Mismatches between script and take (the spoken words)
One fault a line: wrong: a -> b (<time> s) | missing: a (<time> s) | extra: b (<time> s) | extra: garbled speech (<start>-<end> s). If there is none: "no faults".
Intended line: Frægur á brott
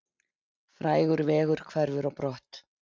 extra: vegur hverfur (1.3 s)